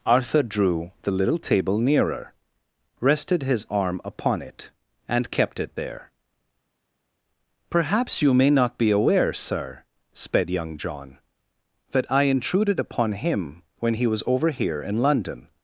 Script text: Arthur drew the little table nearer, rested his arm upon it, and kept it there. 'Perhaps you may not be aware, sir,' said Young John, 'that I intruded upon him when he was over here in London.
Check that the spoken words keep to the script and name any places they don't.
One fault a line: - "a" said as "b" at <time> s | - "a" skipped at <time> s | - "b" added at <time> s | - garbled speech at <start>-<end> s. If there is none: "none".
- "said" said as "sped" at 10.1 s